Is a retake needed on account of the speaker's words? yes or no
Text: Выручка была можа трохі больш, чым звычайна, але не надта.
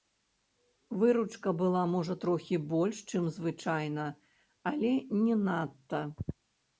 no